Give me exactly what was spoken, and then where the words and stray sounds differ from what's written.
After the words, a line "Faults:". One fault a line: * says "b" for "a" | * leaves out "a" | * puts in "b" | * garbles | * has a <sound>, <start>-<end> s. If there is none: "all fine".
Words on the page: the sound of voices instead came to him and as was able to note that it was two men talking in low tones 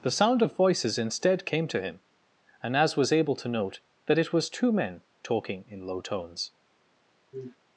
the sound of voices instead came to him and as was able to note that it was two men talking in low tones
Faults:
* has a sniff, 7.3-7.6 s